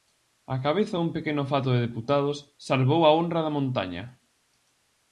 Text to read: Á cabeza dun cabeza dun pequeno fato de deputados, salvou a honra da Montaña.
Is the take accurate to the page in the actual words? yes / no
no